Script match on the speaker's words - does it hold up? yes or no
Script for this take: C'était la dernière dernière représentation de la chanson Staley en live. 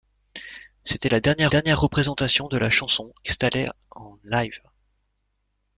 yes